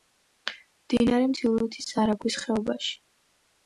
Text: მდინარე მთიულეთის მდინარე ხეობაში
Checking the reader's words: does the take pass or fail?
fail